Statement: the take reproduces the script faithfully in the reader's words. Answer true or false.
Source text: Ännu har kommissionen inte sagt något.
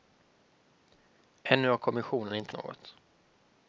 false